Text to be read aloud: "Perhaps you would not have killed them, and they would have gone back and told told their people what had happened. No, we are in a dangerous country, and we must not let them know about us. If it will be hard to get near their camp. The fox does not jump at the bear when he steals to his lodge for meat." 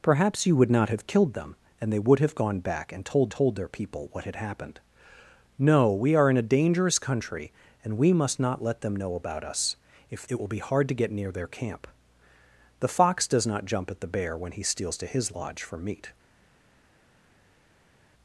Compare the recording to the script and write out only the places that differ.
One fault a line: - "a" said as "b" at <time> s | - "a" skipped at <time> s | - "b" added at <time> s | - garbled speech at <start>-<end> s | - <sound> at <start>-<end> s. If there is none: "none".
none